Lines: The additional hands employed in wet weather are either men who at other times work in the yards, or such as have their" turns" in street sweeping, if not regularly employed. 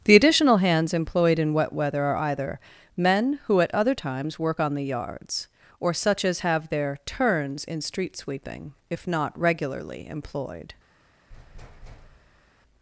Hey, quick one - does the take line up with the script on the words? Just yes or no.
no